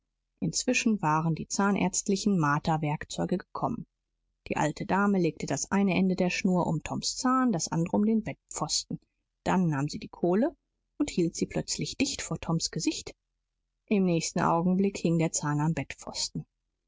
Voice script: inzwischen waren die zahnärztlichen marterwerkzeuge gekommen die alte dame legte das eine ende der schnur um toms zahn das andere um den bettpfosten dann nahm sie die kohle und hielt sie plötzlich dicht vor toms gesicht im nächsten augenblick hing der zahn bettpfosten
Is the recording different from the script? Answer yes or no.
yes